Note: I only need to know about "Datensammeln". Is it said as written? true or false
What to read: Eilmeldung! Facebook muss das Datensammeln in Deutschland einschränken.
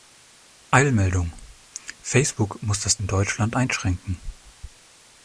false